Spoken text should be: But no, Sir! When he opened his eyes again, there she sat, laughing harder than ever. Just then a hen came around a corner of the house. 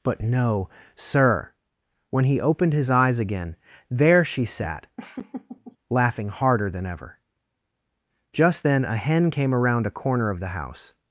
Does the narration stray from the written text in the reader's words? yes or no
no